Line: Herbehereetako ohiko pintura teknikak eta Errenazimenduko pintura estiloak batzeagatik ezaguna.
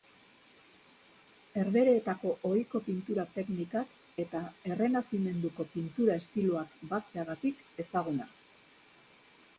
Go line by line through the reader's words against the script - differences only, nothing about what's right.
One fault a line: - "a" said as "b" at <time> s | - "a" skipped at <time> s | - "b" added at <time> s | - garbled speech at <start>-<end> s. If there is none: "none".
none